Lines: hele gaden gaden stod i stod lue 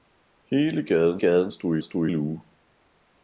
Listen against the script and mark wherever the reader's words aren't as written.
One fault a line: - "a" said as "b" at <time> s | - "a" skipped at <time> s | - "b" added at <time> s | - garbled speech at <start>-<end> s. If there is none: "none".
none